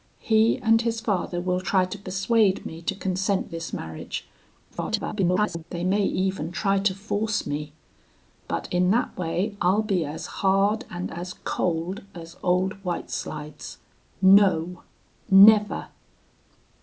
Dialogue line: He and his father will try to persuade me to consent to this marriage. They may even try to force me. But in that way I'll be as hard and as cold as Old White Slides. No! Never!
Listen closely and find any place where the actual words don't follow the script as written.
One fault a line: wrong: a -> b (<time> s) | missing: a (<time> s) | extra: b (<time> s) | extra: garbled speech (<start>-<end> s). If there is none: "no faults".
missing: to (3.5 s)
extra: garbled speech (4.7-5.6 s)